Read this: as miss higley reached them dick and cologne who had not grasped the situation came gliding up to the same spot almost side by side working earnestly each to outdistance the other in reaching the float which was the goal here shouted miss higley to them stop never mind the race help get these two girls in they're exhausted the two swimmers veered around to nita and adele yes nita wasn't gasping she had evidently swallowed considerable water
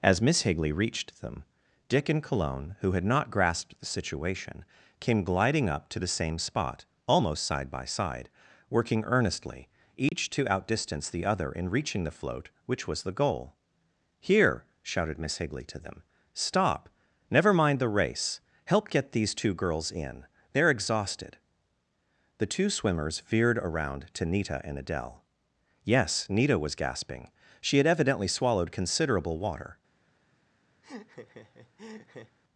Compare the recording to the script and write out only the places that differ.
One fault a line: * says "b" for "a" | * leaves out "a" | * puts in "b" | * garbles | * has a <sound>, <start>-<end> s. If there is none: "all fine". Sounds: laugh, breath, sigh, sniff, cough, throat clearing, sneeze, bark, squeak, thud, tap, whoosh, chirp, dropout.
* has a dropout, 10.1-10.1 s
* says "was" for "wasn't"
* has a laugh, 30.8-32.4 s